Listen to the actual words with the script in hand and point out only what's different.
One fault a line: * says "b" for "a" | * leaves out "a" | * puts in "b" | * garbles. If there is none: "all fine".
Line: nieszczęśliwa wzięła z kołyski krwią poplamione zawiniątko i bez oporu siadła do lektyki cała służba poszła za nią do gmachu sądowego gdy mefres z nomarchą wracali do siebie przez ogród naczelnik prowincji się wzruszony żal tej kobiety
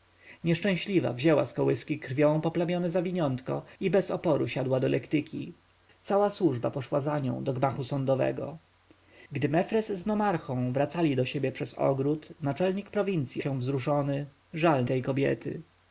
all fine